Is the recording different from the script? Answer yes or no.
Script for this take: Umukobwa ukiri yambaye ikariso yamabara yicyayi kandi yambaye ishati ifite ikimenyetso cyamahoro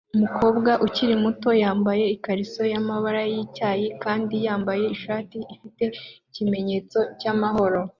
yes